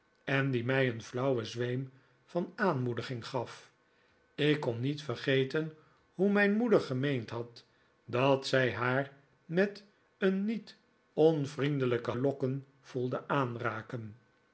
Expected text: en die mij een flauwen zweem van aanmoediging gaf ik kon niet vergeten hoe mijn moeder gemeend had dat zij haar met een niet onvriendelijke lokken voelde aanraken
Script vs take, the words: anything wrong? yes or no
no